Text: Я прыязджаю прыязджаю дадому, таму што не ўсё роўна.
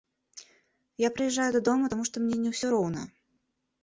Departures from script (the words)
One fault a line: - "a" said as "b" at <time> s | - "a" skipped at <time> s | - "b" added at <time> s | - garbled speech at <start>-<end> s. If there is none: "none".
- "прыязджаю" skipped at 1.4 s
- "мне" added at 2.3 s